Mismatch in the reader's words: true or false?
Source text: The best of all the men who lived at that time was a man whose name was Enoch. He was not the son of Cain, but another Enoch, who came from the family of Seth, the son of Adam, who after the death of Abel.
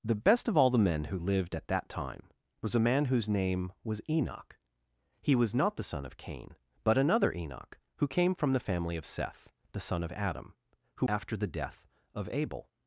false